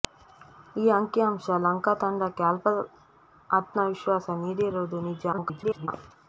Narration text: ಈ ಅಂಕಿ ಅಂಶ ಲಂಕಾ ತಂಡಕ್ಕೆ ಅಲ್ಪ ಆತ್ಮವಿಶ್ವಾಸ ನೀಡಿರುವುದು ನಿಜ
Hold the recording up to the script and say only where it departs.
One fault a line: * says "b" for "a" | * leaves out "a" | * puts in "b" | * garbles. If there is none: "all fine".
* garbles